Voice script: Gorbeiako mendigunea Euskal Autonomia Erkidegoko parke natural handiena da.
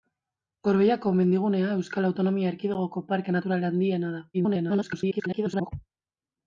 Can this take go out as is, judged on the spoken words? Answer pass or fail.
fail